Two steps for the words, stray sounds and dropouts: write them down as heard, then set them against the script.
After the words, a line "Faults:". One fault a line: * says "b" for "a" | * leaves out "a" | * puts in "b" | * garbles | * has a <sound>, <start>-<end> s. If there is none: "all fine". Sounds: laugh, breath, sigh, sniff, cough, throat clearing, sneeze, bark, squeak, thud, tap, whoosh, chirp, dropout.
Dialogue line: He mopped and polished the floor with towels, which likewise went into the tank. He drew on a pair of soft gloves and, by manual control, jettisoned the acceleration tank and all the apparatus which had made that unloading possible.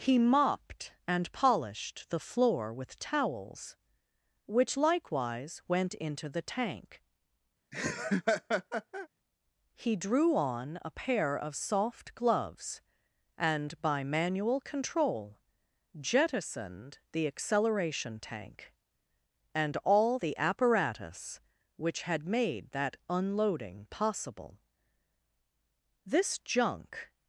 He mopped and polished the floor with towels, which likewise went into the tank. He drew on a pair of soft gloves and, by manual control, jettisoned the acceleration tank and all the apparatus which had made that unloading possible. This junk
Faults:
* has a laugh, 7.7-9.1 s
* puts in "This junk"